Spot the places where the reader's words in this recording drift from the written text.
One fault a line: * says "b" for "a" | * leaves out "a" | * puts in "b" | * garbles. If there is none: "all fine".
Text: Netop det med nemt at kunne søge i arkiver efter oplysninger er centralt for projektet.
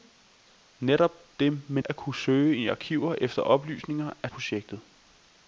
* leaves out "nemt"
* leaves out "centralt for"